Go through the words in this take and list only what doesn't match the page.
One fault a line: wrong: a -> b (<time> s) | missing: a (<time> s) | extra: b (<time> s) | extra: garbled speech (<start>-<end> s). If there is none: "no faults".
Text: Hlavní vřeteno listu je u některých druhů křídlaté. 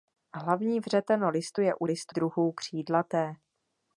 wrong: některých -> listu (1.8 s)